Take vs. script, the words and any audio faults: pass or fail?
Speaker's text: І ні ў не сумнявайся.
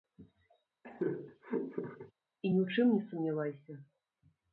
fail